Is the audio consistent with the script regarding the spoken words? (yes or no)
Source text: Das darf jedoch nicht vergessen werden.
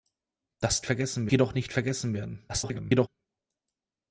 no